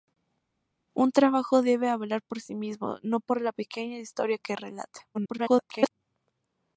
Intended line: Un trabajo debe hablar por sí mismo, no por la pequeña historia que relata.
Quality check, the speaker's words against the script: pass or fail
fail